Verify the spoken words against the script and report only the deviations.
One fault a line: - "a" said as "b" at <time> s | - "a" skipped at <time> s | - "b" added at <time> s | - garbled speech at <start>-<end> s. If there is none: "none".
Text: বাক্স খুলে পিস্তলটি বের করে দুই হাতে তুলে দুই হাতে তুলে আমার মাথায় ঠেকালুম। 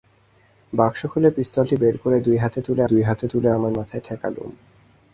none